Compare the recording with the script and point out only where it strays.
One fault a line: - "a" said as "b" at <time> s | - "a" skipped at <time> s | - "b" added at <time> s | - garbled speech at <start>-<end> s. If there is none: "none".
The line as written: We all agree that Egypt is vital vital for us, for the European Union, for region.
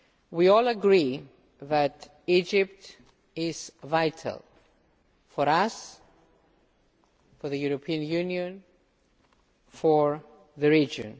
- "vital" skipped at 4.4 s
- "the" added at 10.6 s